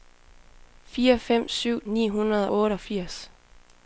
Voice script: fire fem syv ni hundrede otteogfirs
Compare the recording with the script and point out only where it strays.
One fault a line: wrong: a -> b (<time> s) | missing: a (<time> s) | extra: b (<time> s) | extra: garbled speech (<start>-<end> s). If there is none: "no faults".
no faults